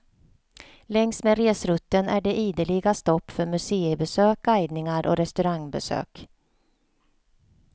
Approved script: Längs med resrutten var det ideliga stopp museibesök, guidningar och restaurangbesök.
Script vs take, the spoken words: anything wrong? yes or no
yes